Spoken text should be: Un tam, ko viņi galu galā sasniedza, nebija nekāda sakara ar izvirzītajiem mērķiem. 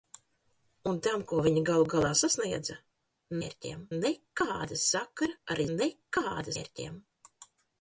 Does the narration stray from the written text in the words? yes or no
yes